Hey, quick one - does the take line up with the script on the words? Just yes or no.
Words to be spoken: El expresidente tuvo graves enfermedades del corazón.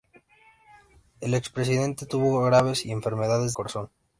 no